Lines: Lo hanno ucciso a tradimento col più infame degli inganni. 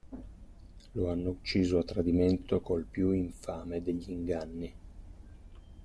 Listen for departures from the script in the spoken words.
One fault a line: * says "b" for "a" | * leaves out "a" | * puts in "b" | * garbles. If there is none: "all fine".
all fine